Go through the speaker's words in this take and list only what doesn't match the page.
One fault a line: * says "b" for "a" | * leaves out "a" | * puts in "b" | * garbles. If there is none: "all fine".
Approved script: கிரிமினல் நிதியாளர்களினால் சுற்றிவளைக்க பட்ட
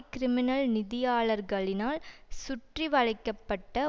all fine